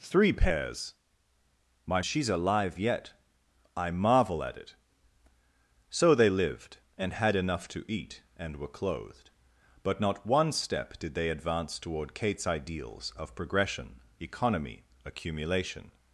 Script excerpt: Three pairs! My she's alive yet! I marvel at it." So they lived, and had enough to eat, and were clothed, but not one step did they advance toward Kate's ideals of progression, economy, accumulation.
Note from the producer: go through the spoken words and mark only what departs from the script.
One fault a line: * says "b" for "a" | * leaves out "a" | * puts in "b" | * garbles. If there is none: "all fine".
all fine